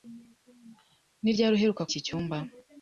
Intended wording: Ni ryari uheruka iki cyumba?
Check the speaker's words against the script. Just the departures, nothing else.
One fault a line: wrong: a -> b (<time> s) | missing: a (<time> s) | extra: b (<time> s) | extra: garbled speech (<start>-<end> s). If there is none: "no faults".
no faults